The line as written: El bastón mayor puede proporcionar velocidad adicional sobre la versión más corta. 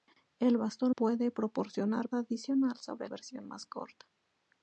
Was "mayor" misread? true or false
true